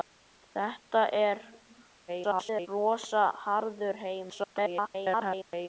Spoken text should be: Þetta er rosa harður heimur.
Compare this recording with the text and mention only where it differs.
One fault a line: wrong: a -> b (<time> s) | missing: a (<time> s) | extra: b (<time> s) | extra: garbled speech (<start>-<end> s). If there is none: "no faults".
extra: garbled speech (2.1-2.7 s)
extra: garbled speech (4.3-5.7 s)